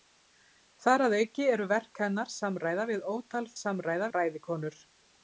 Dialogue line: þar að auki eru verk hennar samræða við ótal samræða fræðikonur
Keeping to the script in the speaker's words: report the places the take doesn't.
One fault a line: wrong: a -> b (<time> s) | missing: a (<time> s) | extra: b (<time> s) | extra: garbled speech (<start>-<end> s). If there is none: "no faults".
no faults